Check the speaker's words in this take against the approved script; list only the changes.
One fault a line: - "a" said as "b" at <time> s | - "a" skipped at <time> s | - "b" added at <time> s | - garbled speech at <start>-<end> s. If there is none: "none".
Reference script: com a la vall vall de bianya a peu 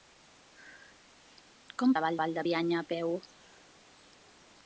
none